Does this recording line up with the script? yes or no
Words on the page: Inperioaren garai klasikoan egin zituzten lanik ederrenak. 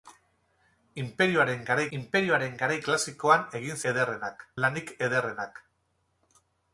no